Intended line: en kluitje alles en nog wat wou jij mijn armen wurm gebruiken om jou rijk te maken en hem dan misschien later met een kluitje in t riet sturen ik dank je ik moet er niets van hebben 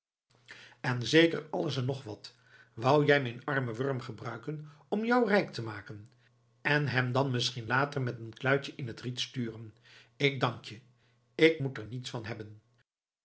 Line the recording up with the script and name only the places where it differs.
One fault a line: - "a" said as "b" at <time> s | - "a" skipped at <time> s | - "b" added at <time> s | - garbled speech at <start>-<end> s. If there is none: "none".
- "kluitje" said as "zeker" at 1.1 s